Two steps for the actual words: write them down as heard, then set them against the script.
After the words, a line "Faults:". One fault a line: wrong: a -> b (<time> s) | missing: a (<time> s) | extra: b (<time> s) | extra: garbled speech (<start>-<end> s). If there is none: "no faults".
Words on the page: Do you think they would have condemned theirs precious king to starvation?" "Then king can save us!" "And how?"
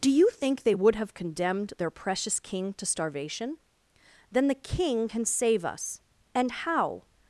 Do you think they would have condemned their precious king to starvation?" "Then the king can save us!" "And how?"
Faults:
wrong: theirs -> their (1.8 s)
extra: the (4.5 s)